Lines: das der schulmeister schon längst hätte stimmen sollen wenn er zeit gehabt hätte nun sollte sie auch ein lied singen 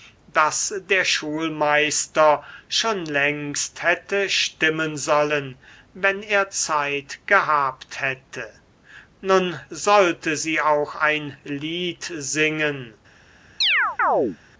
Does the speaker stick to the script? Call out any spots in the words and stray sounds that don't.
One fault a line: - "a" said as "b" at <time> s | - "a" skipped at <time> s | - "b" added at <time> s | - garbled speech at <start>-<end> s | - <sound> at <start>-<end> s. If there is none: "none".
- chirp at 13.6-14.4 s